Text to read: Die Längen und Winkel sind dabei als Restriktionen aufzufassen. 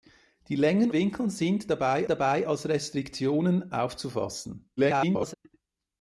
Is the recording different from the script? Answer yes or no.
yes